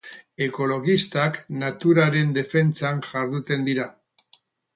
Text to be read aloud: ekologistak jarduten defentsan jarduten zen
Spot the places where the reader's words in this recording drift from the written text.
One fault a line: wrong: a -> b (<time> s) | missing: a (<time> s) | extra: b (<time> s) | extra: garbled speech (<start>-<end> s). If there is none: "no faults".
wrong: jarduten -> naturaren (1.6 s)
wrong: zen -> dira (3.7 s)